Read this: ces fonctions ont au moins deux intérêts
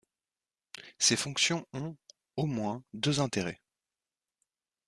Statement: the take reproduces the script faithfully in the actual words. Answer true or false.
true